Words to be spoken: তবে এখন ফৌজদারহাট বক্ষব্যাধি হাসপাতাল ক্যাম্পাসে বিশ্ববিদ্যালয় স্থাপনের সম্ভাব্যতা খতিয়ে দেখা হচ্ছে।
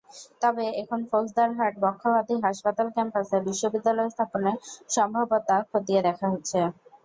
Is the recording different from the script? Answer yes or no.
no